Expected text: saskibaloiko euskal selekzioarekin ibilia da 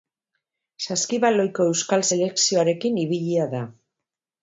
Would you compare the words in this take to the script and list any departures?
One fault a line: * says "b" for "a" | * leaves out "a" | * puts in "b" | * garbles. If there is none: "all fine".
all fine